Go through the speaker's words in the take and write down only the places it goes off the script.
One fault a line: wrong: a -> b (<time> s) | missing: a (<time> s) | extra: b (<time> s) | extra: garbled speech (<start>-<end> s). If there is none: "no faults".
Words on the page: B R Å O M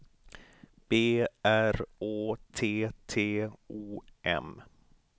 extra: T T (2.5 s)